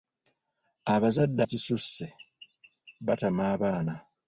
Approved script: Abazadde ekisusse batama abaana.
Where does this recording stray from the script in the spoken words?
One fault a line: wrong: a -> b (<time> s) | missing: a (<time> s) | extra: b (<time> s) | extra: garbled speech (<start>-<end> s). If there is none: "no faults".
no faults